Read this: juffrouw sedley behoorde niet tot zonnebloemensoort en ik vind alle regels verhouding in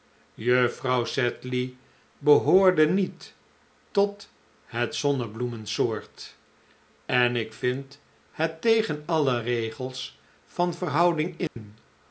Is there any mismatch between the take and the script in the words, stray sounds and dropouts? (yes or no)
yes